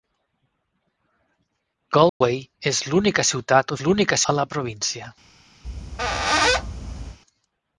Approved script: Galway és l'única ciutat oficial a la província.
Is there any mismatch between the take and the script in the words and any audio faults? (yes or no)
yes